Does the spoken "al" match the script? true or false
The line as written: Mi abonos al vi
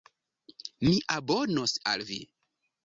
true